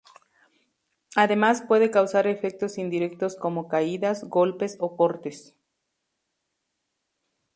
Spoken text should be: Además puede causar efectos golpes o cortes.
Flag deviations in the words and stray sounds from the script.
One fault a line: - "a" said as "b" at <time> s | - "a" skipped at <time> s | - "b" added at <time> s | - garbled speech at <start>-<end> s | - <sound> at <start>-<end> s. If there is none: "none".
- "indirectos como caídas" added at 2.8 s